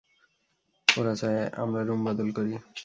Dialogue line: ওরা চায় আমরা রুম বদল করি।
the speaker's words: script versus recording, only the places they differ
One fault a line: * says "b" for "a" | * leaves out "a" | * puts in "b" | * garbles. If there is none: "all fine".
all fine